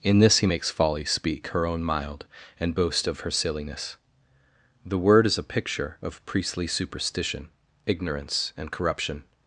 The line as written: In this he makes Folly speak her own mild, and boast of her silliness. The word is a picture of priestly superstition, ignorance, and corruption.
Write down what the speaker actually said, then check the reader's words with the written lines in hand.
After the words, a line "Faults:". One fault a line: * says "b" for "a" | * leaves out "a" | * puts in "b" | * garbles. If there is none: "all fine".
In this he makes Folly speak her own mild, and boast of her silliness. The word is a picture of priestly superstition, ignorance, and corruption.
Faults:
all fine